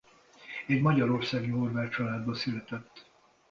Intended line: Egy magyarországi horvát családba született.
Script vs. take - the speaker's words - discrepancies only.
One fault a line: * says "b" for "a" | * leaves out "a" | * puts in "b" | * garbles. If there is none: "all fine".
all fine